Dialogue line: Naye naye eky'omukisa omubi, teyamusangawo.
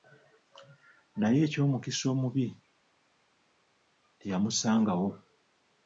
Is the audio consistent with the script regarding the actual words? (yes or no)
no